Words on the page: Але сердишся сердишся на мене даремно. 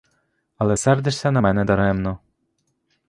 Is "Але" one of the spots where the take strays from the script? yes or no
no